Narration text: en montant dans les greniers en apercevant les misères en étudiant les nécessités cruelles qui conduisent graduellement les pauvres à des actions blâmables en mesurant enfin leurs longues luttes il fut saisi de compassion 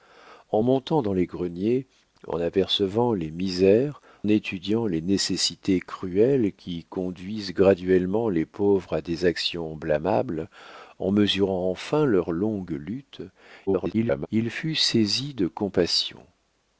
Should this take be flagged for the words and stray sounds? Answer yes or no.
yes